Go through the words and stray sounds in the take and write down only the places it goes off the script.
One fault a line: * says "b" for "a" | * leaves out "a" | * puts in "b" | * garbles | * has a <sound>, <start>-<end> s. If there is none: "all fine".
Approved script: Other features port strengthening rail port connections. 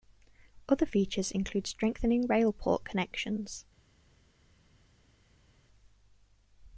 * says "include" for "port"